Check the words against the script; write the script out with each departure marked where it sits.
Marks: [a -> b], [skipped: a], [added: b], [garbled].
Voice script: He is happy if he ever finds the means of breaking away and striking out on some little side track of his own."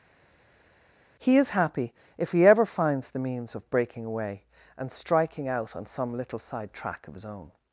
He is happy if he ever finds the means of breaking away and striking out on some little side track of his own."